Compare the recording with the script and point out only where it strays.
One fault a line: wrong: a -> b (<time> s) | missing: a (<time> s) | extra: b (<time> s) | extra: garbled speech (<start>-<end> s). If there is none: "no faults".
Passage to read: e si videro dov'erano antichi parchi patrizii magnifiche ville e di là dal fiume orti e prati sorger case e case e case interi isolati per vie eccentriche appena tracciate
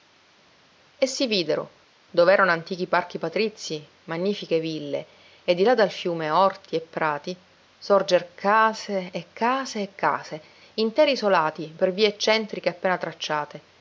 no faults